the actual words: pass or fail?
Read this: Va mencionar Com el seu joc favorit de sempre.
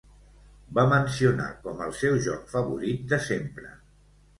pass